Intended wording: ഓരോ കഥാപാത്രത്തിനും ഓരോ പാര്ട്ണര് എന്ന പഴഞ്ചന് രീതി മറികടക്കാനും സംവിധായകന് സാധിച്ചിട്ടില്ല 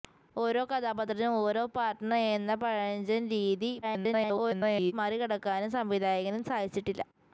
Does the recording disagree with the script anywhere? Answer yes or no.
yes